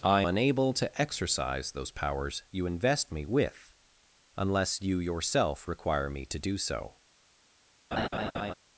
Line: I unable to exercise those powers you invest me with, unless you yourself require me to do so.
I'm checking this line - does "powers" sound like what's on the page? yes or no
yes